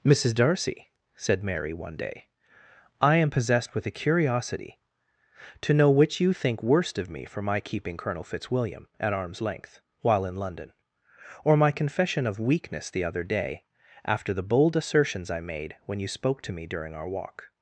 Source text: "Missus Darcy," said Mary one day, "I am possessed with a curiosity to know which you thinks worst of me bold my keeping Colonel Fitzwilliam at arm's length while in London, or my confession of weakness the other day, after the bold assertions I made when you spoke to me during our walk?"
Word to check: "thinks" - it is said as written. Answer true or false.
false